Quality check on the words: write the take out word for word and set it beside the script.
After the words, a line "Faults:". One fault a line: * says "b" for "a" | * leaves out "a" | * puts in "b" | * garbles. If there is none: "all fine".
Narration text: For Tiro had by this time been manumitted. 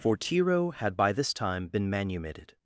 For Tiro had by this time been manumitted.
Faults:
all fine